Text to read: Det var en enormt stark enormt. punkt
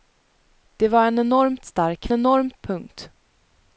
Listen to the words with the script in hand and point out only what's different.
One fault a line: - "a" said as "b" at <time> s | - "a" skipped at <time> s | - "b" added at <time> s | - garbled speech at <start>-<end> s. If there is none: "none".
none